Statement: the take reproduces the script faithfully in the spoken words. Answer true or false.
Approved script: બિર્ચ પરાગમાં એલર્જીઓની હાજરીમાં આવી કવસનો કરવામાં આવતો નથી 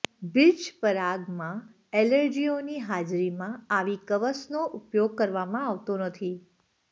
false